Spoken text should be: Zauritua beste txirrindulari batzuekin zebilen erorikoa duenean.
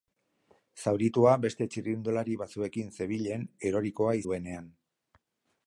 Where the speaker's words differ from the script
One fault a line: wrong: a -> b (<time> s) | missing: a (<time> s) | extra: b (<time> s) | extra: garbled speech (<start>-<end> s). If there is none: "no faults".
no faults